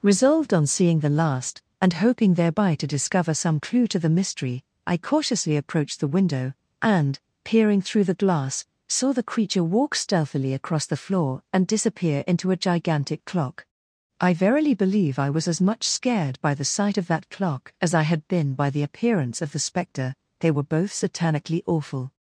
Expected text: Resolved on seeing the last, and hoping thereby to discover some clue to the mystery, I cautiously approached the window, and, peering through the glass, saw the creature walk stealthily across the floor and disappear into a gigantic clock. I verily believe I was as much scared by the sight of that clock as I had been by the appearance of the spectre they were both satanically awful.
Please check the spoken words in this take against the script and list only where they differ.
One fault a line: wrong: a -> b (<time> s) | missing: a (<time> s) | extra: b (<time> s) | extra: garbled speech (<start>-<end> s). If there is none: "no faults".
no faults